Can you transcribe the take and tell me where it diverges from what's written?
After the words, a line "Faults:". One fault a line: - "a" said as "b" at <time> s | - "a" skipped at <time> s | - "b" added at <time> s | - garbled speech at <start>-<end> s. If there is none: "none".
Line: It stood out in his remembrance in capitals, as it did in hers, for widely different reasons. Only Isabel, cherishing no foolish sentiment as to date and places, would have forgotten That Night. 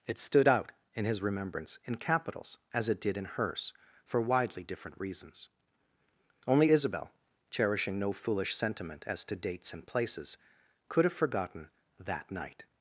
It stood out in his remembrance in capitals, as it did in hers, for widely different reasons. Only Isabel, cherishing no foolish sentiment as to dates and places, could have forgotten That Night.
Faults:
- "date" said as "dates" at 9.3 s
- "would" said as "could" at 10.9 s